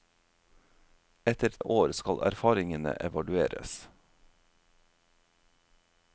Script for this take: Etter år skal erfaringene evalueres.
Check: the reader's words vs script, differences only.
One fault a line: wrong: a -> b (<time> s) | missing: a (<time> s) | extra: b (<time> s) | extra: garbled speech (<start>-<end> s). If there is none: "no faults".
no faults